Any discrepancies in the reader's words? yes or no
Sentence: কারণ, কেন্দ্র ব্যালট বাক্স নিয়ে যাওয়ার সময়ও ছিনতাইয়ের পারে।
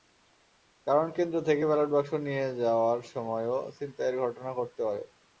yes